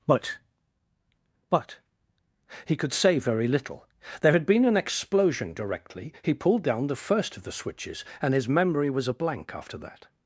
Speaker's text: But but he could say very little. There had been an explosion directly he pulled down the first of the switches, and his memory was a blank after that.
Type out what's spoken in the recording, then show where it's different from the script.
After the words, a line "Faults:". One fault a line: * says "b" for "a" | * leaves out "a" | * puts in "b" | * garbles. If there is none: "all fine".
But but he could say very little. There had been an explosion directly he pulled down the first of the switches, and his memory was a blank after that.
Faults:
all fine